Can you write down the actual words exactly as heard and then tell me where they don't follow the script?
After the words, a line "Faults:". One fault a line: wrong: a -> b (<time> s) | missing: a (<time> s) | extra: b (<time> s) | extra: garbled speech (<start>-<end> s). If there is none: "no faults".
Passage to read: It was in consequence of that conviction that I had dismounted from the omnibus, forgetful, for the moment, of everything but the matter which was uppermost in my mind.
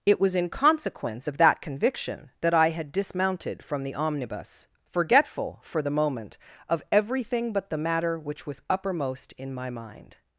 It was in consequence of that conviction that I had dismounted from the omnibus, forgetful, for the moment, of everything but the matter which was uppermost in my mind.
Faults:
no faults